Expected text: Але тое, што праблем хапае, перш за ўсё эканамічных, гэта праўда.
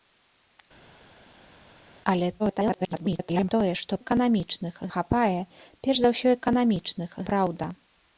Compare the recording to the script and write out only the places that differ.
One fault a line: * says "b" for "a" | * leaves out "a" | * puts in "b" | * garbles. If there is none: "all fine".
* garbles
* says "эканамічных" for "праблем"
* leaves out "гэта"